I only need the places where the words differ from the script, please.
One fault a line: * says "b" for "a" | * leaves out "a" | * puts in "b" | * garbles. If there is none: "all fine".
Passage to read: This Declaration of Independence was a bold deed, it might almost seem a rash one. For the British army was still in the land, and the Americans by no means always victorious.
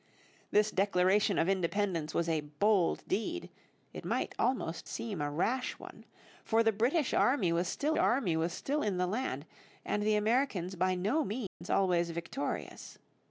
* puts in "army was still"